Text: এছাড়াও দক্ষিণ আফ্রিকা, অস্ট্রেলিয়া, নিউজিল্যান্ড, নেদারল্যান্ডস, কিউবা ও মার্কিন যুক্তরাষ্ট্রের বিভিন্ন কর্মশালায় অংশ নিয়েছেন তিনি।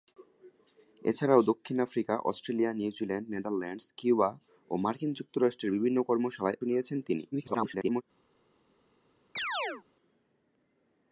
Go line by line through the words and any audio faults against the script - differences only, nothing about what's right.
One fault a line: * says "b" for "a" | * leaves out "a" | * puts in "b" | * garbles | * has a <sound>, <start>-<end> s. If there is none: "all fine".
* leaves out "অংশ"
* garbles
* has a chirp, 9.4-9.8 s